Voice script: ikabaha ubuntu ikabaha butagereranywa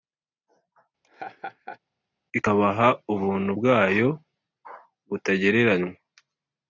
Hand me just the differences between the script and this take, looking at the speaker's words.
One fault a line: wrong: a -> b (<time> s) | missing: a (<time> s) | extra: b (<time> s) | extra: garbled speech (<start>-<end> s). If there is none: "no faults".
wrong: ikabaha -> bwayo (3.6 s)